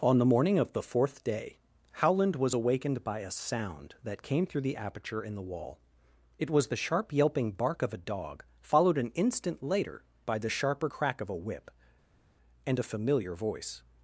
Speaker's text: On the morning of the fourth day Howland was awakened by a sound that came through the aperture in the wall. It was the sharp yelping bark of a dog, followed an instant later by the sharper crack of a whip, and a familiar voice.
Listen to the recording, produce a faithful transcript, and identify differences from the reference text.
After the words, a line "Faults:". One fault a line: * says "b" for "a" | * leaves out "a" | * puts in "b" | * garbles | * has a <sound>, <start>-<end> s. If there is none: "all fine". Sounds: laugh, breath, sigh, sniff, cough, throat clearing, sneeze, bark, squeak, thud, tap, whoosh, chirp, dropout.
On the morning of the fourth day Howland was awakened by a sound that came through the aperture in the wall. It was the sharp yelping bark of a dog, followed an instant later by the sharper crack of a whip, and a familiar voice.
Faults:
all fine